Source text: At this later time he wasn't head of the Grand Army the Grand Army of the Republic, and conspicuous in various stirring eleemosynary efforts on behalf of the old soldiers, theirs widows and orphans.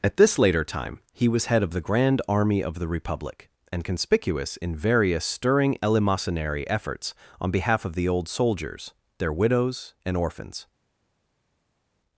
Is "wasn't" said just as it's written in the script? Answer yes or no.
no